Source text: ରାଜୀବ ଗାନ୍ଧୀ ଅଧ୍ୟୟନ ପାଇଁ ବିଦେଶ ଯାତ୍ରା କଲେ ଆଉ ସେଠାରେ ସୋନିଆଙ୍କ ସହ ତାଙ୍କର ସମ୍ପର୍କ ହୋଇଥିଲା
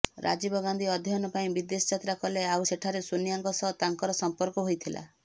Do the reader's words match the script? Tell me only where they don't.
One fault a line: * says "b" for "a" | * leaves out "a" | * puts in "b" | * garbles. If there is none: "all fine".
all fine